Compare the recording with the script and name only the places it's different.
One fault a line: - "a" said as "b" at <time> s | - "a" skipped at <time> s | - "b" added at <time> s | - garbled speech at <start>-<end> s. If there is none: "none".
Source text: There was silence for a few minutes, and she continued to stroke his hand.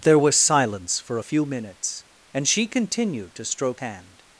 - "his" skipped at 3.8 s